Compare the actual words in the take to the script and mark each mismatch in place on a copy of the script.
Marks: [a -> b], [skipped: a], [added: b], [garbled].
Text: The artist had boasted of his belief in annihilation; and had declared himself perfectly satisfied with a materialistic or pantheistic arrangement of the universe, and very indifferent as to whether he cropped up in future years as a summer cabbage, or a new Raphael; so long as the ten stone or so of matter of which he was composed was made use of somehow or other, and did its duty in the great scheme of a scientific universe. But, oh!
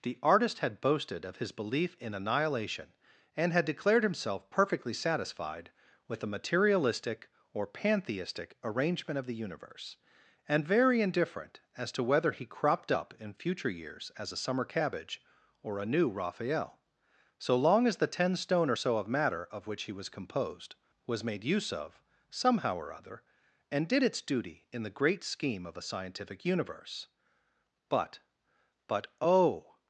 The artist had boasted of his belief in annihilation; and had declared himself perfectly satisfied with a materialistic or pantheistic arrangement of the universe, and very indifferent as to whether he cropped up in future years as a summer cabbage, or a new Raphael; so long as the ten stone or so of matter of which he was composed was made use of somehow or other, and did its duty in the great scheme of a scientific universe. But, [added: But] oh!